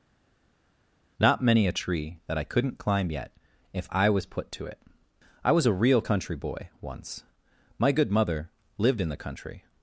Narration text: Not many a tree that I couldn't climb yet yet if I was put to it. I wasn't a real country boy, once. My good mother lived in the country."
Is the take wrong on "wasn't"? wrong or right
wrong